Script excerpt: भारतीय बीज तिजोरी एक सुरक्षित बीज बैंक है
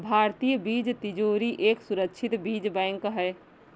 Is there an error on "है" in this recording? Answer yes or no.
no